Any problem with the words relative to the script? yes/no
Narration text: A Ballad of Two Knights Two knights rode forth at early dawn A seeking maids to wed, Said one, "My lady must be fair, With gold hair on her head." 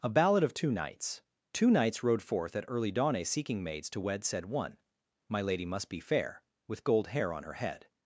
no